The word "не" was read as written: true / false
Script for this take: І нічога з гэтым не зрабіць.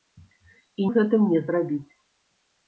true